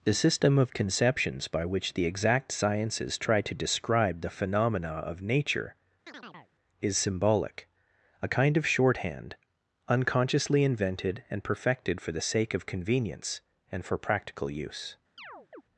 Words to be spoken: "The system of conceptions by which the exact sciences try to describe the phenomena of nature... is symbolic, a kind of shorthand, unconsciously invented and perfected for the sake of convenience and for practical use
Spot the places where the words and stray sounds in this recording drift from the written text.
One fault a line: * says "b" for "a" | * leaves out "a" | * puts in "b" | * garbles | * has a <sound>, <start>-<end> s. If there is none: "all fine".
* has a chirp, 6.1-6.5 s
* has a chirp, 15.2-15.6 s